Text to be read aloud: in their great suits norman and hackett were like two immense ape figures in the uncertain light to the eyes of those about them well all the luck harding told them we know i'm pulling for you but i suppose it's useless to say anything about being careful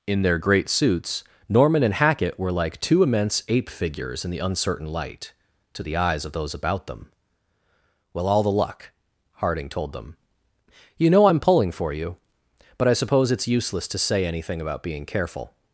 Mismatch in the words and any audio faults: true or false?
true